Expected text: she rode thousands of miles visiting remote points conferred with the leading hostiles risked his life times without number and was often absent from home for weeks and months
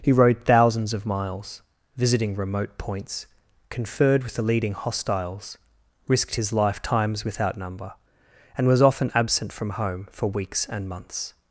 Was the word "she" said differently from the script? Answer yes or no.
yes